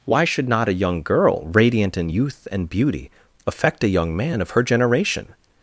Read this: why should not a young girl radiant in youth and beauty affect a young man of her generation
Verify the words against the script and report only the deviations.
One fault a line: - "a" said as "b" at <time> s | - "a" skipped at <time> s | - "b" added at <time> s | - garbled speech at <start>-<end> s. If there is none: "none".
none